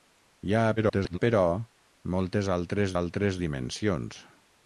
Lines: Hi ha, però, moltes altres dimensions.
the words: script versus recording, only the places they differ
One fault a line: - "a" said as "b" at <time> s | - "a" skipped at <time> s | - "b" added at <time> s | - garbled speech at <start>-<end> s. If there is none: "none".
- garbled speech at 0.8-1.2 s
- "altres" added at 3.0 s